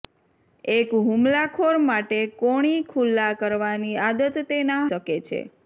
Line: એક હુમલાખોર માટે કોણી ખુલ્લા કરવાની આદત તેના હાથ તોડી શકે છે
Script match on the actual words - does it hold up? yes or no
no